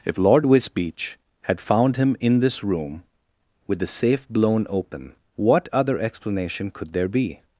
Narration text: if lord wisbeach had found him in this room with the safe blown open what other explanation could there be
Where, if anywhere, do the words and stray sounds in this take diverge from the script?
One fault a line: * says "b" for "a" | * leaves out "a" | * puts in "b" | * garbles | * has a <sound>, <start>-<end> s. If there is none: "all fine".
all fine